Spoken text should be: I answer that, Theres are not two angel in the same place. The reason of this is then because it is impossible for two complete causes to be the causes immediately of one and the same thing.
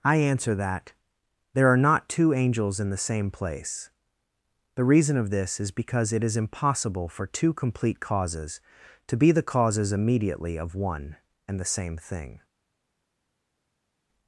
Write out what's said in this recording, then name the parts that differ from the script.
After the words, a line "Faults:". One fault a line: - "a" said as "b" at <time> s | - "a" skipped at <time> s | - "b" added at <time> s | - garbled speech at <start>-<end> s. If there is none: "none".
I answer that, There are not two angels in the same place. The reason of this is because it is impossible for two complete causes to be the causes immediately of one and the same thing.
Faults:
- "Theres" said as "There" at 1.5 s
- "angel" said as "angels" at 2.3 s
- "then" skipped at 5.7 s